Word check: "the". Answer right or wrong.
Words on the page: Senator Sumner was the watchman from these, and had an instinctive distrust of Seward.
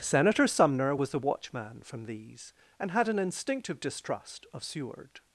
right